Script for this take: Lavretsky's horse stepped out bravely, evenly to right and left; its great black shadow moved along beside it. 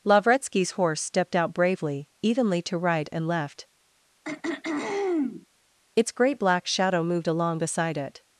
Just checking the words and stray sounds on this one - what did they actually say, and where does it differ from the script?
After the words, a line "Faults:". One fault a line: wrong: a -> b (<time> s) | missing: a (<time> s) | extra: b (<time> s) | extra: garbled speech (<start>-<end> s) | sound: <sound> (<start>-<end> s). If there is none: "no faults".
Lavretsky's horse stepped out bravely, evenly to right and left; its great black shadow moved along beside it.
Faults:
sound: throat clearing (4.2-5.5 s)